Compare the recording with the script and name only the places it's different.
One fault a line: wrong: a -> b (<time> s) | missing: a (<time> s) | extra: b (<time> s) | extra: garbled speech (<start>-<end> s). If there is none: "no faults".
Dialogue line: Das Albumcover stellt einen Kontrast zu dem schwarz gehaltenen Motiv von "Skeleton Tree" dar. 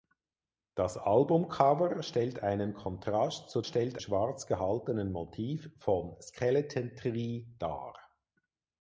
wrong: dem -> stellt (3.6 s)